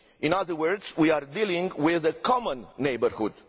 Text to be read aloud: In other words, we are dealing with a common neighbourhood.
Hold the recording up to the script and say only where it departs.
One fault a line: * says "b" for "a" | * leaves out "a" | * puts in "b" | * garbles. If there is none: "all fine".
all fine